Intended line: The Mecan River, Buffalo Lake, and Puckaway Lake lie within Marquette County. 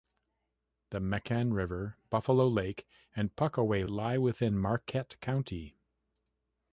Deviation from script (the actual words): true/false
true